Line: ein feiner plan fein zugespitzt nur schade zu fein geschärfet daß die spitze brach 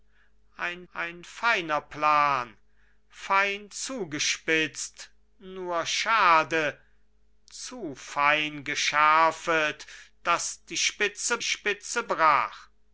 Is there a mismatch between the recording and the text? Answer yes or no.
yes